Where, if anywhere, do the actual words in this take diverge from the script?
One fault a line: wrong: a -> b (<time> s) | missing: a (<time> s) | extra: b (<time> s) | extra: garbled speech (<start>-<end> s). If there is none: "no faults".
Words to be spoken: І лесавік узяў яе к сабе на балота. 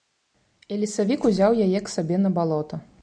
no faults